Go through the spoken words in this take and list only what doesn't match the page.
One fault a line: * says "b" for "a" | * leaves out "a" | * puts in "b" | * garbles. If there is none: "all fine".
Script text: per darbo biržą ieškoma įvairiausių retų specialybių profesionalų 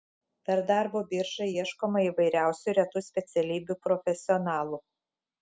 all fine